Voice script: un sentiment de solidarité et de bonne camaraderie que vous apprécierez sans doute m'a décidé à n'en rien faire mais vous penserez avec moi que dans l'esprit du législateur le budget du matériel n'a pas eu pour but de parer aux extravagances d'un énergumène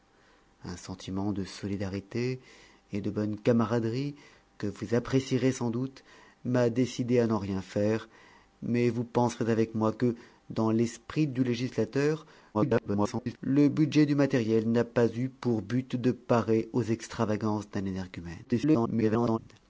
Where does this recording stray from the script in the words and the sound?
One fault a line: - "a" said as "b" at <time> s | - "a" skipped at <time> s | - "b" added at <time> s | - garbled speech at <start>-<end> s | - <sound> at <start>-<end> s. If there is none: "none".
- garbled speech at 12.5-13.4 s
- garbled speech at 18.4-19.4 s